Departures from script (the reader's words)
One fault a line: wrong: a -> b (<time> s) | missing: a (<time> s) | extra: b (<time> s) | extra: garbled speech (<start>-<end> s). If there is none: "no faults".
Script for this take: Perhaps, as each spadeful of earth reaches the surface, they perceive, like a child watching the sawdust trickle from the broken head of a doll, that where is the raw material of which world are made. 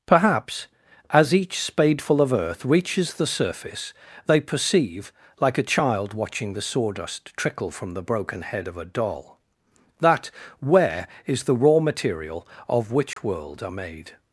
no faults